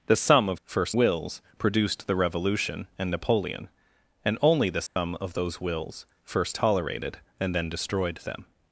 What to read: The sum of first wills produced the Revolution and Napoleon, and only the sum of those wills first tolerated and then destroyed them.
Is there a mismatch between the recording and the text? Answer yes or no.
no